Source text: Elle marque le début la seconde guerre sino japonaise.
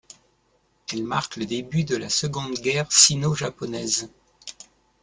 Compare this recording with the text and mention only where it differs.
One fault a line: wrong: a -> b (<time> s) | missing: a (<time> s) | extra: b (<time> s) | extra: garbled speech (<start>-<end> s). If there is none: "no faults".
extra: de (1.8 s)